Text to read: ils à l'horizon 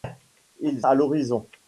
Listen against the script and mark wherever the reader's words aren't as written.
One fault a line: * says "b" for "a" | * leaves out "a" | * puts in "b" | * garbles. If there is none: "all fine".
all fine